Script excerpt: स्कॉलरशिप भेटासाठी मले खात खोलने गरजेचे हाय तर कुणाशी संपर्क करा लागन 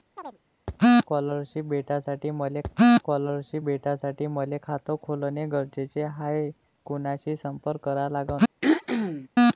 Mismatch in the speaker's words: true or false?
true